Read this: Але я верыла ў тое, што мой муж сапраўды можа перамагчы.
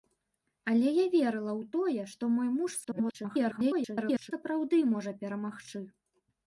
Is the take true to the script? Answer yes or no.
no